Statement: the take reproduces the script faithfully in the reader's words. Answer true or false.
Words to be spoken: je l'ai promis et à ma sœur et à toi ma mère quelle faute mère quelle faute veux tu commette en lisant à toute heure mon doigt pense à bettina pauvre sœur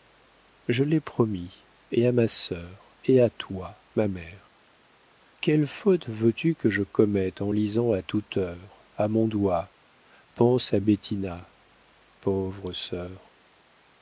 false